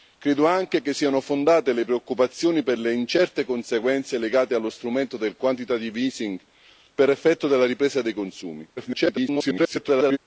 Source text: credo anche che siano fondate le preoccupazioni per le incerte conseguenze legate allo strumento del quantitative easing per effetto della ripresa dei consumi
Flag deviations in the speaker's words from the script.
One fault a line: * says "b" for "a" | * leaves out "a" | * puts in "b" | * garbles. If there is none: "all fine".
* garbles